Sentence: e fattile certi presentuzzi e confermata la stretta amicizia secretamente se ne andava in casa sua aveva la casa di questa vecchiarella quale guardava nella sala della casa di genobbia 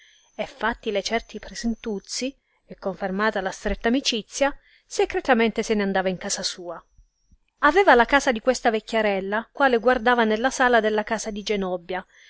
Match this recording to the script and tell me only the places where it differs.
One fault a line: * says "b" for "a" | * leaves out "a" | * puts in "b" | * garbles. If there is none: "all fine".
all fine